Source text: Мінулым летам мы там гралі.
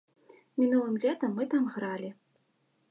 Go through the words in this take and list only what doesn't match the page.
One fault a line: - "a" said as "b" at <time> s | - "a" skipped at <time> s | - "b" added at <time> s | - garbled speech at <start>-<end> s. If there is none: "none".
none